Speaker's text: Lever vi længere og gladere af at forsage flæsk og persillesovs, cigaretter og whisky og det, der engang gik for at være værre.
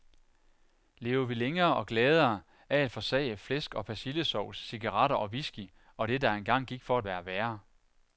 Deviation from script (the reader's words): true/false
false